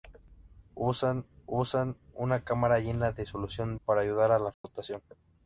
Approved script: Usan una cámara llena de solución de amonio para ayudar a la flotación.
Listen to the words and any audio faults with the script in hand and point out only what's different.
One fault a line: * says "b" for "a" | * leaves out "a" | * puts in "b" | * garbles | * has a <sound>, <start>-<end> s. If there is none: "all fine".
* puts in "usan"
* leaves out "de amonio"
* has a dropout, 4.5-4.6 s